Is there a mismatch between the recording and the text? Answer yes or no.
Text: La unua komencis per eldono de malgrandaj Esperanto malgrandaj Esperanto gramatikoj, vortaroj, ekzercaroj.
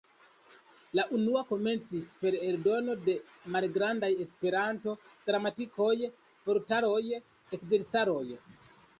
yes